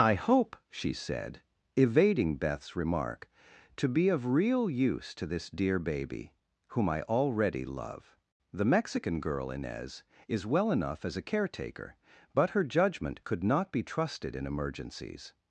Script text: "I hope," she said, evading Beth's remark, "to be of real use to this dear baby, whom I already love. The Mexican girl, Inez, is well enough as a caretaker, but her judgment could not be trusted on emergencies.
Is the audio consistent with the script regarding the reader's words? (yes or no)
no